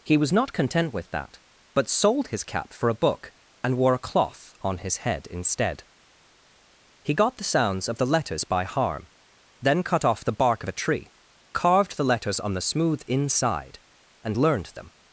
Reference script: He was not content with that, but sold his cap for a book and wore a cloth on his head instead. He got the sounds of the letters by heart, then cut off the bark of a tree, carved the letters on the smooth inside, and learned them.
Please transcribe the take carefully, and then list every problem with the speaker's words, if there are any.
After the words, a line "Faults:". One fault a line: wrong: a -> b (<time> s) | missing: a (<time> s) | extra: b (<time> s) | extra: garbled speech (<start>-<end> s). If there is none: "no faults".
He was not content with that, but sold his cap for a book and wore a cloth on his head instead. He got the sounds of the letters by harm, then cut off the bark of a tree, carved the letters on the smooth inside, and learned them.
Faults:
wrong: heart -> harm (8.6 s)